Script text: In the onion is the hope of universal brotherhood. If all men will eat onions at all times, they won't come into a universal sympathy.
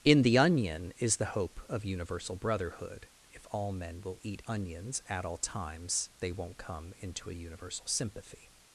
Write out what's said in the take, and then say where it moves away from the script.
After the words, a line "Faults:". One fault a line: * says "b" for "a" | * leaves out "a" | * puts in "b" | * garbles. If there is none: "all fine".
In the onion is the hope of universal brotherhood. If all men will eat onions at all times, they won't come into a universal sympathy.
Faults:
all fine